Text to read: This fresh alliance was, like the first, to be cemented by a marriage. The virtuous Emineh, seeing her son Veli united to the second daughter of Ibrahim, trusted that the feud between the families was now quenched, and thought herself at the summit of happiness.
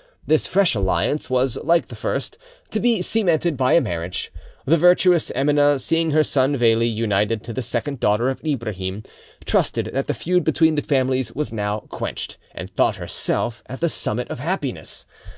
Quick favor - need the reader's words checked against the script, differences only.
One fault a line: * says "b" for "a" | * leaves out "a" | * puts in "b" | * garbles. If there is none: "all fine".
all fine